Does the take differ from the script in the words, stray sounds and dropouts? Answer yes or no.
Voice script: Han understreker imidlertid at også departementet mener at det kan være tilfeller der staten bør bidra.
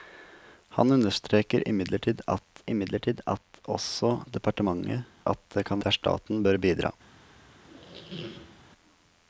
yes